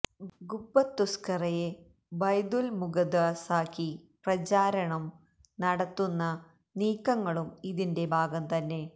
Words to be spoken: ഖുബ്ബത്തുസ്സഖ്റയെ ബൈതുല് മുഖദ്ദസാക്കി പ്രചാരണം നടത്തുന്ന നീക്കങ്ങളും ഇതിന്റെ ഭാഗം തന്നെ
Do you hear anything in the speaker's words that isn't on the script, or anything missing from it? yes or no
no